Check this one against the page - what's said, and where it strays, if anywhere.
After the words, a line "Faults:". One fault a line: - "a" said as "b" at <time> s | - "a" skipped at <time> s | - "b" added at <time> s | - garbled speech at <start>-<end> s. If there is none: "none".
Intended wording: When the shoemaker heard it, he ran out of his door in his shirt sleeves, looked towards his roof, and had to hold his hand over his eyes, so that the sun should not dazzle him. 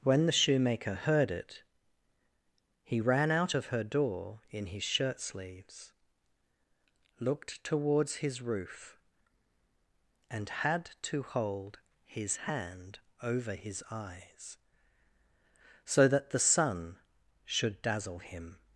When the shoemaker heard it, he ran out of her door in his shirt sleeves, looked towards his roof, and had to hold his hand over his eyes, so that the sun should dazzle him.
Faults:
- "his" said as "her" at 3.7 s
- "not" skipped at 17.8 s